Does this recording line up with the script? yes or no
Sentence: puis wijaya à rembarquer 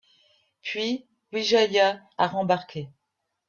yes